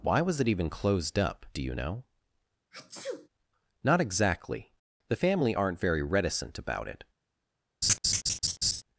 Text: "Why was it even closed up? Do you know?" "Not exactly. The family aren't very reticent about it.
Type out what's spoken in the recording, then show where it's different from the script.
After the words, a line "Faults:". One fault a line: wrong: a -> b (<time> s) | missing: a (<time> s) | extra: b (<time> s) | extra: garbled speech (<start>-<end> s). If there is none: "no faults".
"Why was it even closed up? Do you know?" "Not exactly. The family aren't very reticent about it.
Faults:
no faults